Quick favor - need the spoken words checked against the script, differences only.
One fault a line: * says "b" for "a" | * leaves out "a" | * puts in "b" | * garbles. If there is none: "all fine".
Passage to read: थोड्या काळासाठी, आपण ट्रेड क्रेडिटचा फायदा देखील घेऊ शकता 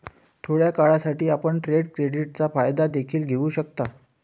all fine